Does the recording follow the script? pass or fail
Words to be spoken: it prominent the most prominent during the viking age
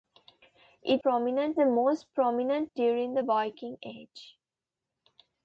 pass